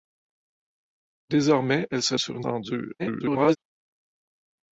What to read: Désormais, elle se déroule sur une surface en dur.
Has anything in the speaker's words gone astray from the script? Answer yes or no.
yes